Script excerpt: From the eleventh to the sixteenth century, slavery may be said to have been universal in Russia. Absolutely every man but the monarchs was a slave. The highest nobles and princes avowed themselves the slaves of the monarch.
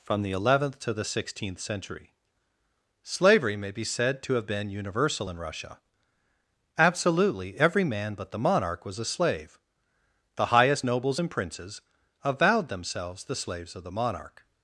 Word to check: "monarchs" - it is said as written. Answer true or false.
false